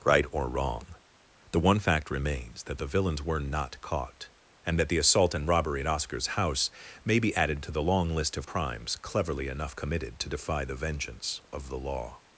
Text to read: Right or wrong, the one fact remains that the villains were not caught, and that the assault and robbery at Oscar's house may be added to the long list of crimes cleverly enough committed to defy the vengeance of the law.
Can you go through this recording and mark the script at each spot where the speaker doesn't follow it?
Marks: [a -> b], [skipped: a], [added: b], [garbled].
Right or wrong, the one fact remains that the villains were not caught, and that the assault and robbery at Oscar's house may be added to the long list of crimes cleverly enough committed to defy the vengeance of the law.